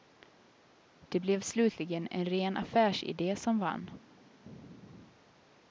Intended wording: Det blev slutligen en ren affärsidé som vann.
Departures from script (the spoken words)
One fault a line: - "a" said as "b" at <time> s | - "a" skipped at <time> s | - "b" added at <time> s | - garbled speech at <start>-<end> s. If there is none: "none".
none